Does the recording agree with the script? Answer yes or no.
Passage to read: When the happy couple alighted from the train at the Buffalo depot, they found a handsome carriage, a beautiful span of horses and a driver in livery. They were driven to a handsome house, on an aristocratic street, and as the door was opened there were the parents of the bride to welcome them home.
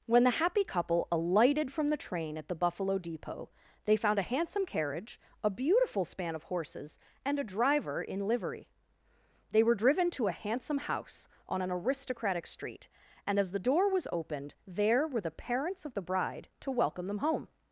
yes